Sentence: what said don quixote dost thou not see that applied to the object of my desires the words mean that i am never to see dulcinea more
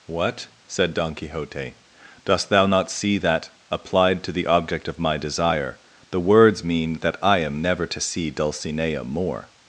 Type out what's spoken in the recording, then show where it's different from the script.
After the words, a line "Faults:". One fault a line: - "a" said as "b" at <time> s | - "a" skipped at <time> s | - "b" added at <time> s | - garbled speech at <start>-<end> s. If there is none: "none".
what said don quixote dost thou not see that applied to the object of my desire the words mean that i am never to see dulcinea more
Faults:
- "desires" said as "desire" at 5.2 s